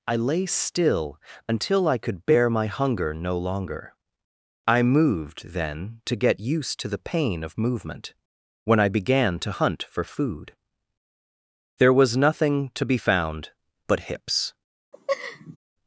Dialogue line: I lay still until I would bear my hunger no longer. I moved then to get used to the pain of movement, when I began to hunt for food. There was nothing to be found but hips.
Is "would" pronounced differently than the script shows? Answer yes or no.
yes